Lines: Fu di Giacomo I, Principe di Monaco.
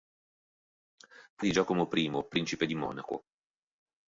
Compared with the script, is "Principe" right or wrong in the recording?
right